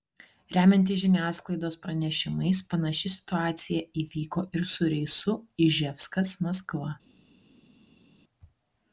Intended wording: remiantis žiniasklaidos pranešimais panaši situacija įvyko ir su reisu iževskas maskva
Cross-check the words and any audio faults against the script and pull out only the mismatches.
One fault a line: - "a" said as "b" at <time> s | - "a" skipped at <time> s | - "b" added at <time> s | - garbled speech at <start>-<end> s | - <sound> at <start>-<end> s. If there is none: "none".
none